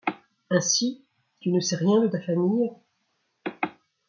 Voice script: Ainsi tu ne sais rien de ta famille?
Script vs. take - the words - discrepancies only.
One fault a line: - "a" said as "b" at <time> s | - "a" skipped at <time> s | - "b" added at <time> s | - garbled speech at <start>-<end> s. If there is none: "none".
none